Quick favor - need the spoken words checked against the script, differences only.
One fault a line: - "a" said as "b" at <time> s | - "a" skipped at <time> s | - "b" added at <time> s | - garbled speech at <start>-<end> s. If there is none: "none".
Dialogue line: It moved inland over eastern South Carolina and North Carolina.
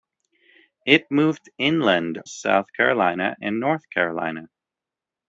- "over eastern" skipped at 2.2 s